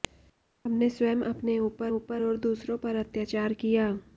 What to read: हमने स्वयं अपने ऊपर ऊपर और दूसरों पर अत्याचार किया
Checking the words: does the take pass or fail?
pass